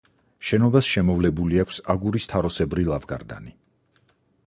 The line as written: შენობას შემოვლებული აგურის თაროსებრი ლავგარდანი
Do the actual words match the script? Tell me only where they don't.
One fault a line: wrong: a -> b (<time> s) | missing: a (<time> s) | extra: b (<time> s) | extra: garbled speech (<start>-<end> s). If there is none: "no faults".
extra: აქვს (1.6 s)